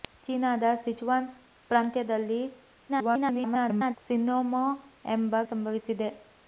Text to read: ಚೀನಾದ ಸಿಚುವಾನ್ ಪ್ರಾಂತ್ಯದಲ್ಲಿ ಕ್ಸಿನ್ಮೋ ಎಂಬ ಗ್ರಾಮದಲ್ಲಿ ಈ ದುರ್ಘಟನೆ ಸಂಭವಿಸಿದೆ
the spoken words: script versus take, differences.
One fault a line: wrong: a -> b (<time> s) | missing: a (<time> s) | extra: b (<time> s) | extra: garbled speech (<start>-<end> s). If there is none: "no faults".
extra: garbled speech (2.9-4.0 s)
missing: ಗ್ರಾಮದಲ್ಲಿ ಈ ದುರ್ಘಟನೆ (5.4 s)